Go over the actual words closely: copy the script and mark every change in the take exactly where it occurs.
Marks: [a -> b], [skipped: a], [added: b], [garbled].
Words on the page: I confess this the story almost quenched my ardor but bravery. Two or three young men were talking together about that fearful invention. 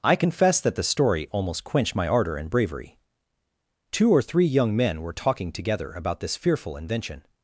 I confess [this -> that] the story almost quenched my ardor [but -> and] bravery. Two or three young men were talking together about [that -> this] fearful invention.